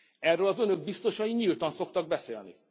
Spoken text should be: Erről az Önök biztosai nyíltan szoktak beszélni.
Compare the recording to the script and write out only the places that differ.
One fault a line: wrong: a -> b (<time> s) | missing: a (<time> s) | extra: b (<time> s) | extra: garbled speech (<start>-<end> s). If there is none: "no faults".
no faults